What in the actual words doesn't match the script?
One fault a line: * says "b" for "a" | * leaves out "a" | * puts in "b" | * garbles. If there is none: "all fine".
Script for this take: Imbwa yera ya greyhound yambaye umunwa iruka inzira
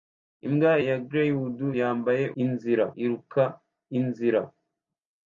* leaves out "yera"
* says "inzira" for "umunwa"